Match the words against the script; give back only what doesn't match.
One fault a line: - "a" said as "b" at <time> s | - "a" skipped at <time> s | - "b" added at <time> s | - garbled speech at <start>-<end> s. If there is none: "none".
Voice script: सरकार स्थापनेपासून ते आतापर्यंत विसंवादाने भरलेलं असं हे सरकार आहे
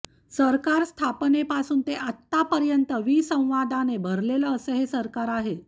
none